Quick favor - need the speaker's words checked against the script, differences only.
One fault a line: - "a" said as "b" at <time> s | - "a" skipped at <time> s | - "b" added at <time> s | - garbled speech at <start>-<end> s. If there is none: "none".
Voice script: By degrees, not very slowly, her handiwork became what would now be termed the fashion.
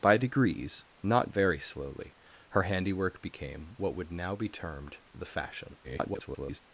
- garbled speech at 5.8-6.6 s